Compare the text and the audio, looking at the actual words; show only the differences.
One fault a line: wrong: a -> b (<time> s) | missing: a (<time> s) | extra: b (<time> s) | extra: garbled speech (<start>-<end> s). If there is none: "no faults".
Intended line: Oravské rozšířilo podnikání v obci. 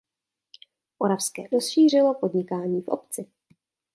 no faults